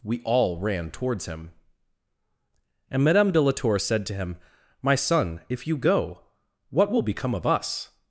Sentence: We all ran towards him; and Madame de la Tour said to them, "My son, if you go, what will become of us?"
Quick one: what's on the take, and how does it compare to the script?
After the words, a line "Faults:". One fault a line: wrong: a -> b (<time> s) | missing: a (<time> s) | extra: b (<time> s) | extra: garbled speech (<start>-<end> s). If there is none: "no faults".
We all ran towards him; and Madame de la Tour said to him, "My son, if you go, what will become of us?"
Faults:
wrong: them -> him (4.2 s)